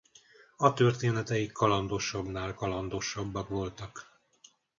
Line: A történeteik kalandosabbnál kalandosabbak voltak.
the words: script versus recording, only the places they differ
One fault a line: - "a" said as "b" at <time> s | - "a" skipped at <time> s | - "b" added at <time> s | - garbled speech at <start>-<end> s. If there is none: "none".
none